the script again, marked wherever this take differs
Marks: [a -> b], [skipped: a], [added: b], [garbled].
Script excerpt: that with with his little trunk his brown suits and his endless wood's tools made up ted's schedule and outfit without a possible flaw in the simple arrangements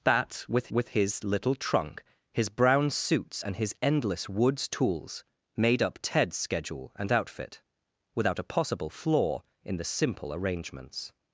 that with with his little trunk his brown suits and his endless wood's tools made up ted's schedule and outfit without a possible flaw in the simple arrangements